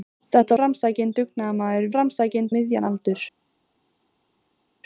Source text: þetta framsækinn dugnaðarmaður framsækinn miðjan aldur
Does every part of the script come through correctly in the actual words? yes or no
yes